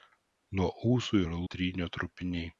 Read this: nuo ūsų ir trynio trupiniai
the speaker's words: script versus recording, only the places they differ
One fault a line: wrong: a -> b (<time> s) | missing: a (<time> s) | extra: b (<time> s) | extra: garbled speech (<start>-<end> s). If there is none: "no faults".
no faults